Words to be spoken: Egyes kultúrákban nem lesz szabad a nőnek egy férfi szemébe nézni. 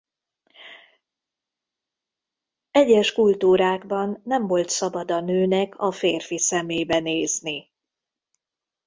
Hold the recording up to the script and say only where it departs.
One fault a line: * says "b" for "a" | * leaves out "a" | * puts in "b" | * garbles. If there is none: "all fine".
* says "volt" for "lesz"
* says "a" for "egy"